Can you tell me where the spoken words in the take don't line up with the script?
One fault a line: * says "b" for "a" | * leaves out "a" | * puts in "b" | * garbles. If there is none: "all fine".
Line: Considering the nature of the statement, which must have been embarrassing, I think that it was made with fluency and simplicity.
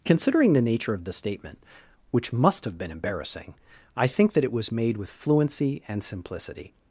all fine